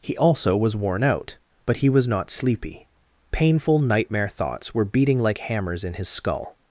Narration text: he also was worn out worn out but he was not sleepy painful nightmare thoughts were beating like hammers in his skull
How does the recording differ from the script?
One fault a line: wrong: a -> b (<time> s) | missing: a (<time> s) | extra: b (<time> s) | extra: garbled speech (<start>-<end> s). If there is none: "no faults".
missing: worn out (1.4 s)